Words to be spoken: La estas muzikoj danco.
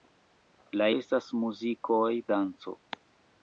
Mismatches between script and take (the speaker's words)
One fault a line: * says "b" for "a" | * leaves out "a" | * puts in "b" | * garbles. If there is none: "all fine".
all fine